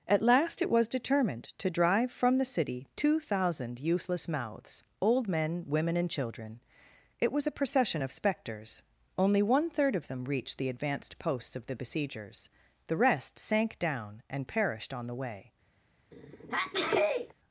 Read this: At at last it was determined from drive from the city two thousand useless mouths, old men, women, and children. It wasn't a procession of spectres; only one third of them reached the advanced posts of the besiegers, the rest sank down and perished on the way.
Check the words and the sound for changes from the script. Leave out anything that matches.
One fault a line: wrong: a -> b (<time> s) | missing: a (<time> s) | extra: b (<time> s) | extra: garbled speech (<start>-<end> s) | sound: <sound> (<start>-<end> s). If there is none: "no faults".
missing: at (0.2 s)
wrong: from -> to (1.6 s)
wrong: wasn't -> was (7.3 s)
sound: sneeze (16.1-17.3 s)